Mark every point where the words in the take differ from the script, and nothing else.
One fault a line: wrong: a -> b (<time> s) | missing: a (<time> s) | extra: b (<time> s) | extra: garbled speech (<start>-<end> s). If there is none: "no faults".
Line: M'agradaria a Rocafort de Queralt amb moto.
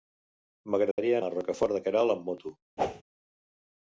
no faults